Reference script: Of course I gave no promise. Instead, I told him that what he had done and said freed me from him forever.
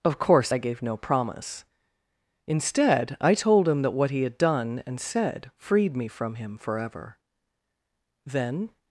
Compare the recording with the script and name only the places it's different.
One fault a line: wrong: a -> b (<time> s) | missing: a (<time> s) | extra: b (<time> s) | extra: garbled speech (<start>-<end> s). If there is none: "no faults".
extra: Then (8.2 s)